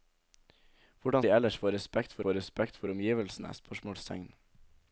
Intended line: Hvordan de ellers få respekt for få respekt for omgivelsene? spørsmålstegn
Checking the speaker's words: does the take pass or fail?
pass